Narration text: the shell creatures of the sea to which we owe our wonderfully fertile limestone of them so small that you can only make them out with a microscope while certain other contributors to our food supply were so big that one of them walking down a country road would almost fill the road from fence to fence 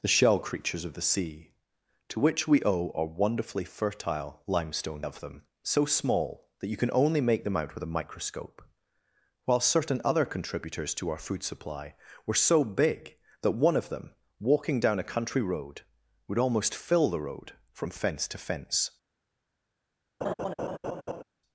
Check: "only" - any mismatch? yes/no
no